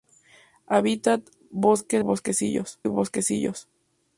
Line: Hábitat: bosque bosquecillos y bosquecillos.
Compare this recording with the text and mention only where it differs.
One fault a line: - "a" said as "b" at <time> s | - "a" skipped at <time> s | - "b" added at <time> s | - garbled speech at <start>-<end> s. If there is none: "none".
none